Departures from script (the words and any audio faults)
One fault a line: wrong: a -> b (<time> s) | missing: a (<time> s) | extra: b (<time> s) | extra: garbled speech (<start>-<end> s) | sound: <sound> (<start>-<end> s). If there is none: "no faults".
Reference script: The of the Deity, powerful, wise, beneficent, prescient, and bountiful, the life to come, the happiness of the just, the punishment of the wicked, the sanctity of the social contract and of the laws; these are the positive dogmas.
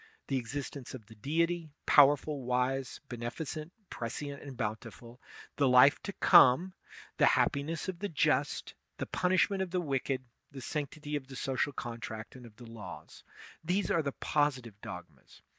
extra: existence (0.4 s)